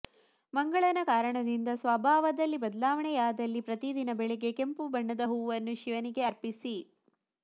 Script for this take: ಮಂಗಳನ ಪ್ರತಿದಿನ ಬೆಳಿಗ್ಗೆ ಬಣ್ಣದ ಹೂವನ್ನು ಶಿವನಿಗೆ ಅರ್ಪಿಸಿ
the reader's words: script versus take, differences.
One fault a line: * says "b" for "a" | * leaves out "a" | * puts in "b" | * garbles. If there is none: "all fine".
* puts in "ಕಾರಣದಿಂದ ಸ್ವಭಾವದಲ್ಲಿ ಬದಲಾವಣೆಯಾದಲ್ಲಿ"
* puts in "ಕೆಂಪು"